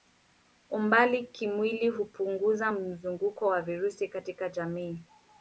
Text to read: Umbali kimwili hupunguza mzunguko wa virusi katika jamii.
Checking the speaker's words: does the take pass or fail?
pass